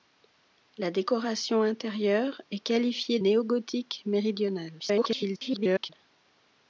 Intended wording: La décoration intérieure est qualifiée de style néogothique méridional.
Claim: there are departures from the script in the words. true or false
true